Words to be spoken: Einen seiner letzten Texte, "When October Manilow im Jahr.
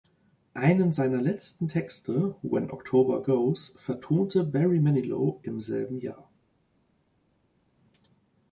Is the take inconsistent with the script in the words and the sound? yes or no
yes